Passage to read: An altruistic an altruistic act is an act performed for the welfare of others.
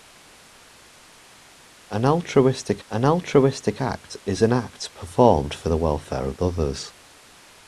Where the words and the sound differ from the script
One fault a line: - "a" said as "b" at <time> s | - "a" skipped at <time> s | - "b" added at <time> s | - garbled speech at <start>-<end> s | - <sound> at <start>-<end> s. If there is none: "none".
none